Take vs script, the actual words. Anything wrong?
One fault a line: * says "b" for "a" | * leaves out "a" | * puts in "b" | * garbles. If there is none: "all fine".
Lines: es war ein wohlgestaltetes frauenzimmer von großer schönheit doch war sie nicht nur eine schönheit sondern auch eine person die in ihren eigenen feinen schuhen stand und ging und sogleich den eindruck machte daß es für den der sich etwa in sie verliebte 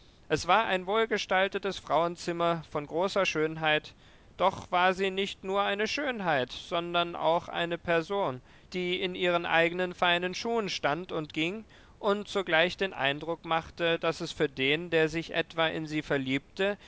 all fine